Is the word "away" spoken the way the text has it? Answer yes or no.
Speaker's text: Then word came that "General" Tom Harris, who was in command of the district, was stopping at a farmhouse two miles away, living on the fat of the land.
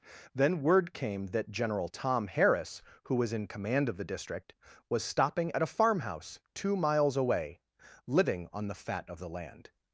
yes